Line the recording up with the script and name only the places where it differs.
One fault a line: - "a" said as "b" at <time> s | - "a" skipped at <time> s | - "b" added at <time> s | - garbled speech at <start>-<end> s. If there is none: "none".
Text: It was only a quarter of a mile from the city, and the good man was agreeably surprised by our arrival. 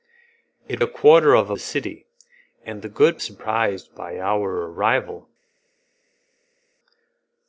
- "was only" skipped at 0.8 s
- "mile from" skipped at 1.6 s
- "man was agreeably" skipped at 3.2 s